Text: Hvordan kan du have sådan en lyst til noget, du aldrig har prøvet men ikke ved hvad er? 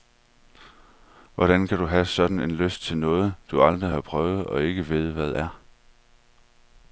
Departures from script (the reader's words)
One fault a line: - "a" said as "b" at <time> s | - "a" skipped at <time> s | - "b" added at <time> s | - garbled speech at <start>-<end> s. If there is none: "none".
- "men" said as "og" at 4.4 s